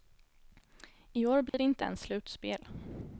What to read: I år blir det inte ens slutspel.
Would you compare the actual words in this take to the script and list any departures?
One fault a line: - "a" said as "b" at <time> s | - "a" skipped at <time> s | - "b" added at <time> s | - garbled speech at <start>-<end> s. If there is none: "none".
none